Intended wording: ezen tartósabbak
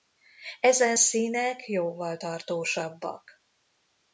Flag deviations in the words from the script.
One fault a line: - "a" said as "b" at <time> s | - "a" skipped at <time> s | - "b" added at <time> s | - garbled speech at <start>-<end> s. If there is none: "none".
- "színek jóval" added at 0.9 s